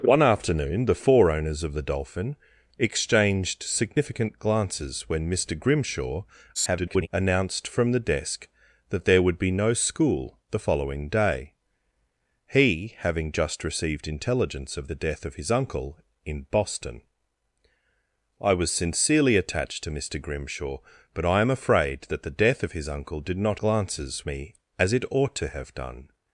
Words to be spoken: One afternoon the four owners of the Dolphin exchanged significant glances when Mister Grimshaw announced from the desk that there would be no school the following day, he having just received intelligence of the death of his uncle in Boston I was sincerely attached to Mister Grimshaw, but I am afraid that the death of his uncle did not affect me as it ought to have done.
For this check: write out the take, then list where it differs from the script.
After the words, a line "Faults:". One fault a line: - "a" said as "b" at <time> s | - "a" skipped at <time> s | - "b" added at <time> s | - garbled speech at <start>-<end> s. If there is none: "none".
One afternoon the four owners of the Dolphin exchanged significant glances when Mister Grimshaw [garbled] announced from the desk that there would be no school the following day, he having just received intelligence of the death of his uncle in Boston I was sincerely attached to Mister Grimshaw, but I am afraid that the death of his uncle did not glances me as it ought to have done.
Faults:
- garbled speech at 6.5-7.1 s
- "affect" said as "glances" at 23.6 s